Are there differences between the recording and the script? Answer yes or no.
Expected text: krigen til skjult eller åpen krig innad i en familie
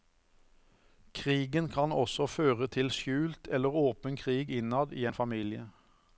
yes